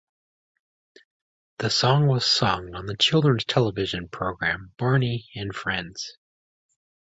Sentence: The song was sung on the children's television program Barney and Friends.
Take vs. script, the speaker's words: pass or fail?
pass